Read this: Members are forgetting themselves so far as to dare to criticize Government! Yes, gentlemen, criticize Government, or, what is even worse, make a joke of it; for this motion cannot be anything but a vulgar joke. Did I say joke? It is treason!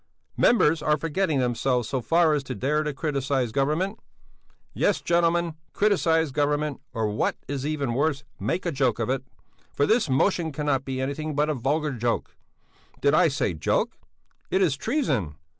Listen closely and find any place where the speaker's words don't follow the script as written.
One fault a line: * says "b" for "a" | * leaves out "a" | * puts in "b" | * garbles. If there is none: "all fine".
all fine